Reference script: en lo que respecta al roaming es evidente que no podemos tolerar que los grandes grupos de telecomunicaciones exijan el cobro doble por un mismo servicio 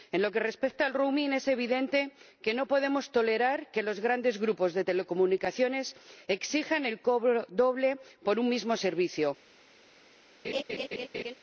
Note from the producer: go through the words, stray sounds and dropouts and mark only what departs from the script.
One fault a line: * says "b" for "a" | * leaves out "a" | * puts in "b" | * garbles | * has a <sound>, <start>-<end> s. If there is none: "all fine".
* has a laugh, 10.4-11.3 s